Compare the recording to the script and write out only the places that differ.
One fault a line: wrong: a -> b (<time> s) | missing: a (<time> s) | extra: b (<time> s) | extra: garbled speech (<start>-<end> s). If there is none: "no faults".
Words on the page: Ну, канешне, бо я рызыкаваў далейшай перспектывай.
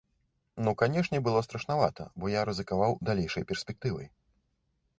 extra: было страшнавата (1.3 s)